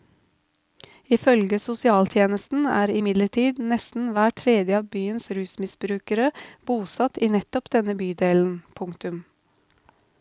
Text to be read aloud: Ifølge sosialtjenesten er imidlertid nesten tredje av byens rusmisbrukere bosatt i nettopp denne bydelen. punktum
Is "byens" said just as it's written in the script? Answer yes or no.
yes